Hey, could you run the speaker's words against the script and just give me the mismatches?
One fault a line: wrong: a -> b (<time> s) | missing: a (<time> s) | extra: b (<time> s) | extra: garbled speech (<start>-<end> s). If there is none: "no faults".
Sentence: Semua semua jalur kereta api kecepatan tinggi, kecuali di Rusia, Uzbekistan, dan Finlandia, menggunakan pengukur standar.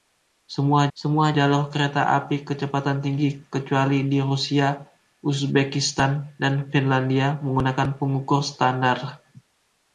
no faults